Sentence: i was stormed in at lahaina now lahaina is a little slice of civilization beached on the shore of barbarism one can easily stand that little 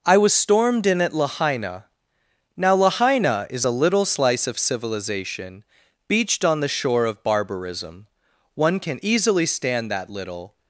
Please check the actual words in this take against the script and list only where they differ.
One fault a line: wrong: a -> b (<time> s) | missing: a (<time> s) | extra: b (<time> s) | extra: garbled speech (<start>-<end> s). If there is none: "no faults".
no faults